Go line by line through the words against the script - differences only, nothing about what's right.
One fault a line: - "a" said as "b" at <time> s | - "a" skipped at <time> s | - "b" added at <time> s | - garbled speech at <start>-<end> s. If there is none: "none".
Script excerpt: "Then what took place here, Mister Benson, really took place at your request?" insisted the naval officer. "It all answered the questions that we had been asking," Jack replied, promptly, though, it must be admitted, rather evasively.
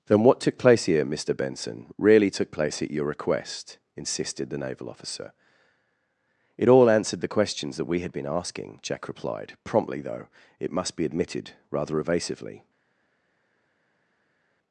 none